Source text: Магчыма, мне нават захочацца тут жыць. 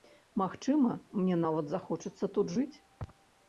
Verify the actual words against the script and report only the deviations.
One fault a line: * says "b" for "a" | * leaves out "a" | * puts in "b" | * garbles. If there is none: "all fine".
all fine